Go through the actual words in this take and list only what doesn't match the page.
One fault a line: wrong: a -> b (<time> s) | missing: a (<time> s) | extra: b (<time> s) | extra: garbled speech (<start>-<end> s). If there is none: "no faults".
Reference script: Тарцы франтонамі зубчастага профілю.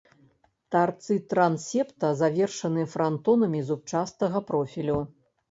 extra: трансепта завершаны (1.3 s)